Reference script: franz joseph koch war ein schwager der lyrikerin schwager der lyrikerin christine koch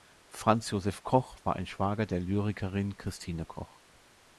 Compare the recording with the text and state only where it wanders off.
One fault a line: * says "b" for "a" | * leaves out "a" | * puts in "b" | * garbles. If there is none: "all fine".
* leaves out "schwager der lyrikerin"